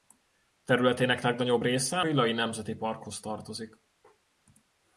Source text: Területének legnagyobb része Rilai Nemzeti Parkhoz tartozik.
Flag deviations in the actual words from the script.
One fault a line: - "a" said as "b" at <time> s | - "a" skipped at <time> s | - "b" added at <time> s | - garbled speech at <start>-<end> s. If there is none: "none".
none